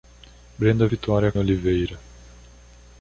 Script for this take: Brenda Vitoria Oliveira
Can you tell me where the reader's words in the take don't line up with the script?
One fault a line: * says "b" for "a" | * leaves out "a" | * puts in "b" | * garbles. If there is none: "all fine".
all fine